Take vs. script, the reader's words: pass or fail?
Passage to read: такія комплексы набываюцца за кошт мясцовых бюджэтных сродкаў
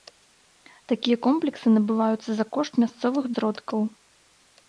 fail